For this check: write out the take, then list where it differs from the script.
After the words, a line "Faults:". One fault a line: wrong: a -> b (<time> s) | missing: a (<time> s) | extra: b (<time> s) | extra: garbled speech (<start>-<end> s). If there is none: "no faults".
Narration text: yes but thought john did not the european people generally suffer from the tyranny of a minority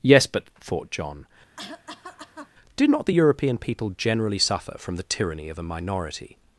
yes but thought john did not the european people generally suffer from the tyranny of a minority
Faults:
no faults